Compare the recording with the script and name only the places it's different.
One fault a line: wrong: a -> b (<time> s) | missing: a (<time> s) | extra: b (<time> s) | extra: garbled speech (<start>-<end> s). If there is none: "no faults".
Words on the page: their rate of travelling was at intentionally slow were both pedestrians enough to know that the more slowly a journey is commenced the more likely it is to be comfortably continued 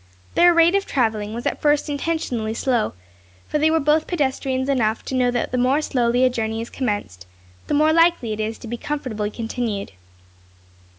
extra: first (1.6 s)
extra: for they (3.5 s)